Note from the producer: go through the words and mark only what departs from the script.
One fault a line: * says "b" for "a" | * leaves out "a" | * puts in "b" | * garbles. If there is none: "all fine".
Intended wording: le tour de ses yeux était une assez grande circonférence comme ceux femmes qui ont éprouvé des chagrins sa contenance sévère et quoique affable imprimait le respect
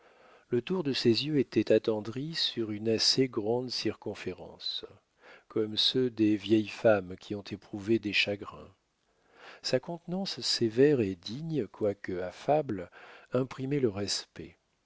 * puts in "attendri sur"
* puts in "des vieilles"
* puts in "digne"